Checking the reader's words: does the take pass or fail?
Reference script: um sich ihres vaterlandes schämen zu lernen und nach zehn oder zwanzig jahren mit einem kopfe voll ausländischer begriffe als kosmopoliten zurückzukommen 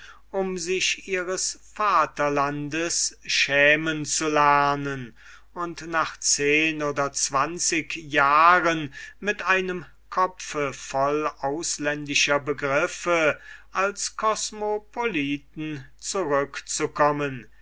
pass